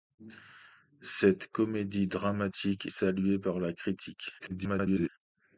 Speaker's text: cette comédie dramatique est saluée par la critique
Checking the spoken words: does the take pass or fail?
fail